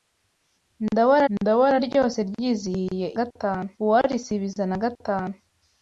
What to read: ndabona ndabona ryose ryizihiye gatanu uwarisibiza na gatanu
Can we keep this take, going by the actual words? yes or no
yes